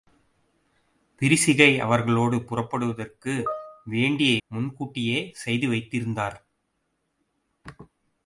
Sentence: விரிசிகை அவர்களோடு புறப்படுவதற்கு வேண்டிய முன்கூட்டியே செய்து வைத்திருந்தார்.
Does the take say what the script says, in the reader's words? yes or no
yes